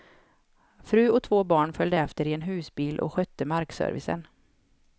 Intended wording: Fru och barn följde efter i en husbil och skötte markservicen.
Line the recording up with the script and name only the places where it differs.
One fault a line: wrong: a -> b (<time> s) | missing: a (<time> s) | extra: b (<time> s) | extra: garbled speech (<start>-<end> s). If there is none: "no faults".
extra: två (1.2 s)